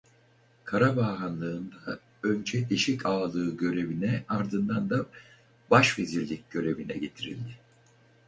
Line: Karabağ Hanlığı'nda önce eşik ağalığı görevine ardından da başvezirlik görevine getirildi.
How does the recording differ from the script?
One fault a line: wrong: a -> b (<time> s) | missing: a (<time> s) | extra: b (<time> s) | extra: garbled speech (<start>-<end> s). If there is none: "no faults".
no faults